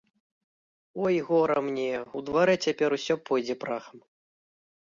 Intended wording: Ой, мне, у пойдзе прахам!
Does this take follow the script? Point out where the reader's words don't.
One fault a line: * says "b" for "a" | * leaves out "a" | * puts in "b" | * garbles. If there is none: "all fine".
* puts in "гора"
* puts in "дварэ цяпер усё"